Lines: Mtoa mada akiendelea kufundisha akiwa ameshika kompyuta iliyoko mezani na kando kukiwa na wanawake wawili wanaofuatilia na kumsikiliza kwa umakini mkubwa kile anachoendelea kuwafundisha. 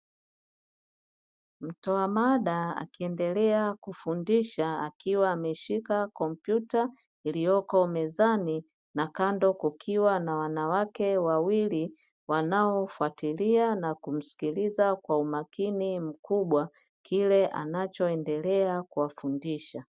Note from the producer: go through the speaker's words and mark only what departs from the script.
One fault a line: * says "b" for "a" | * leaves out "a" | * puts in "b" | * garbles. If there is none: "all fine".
all fine